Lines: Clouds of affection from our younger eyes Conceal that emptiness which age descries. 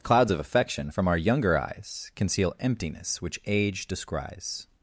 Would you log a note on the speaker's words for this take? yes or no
yes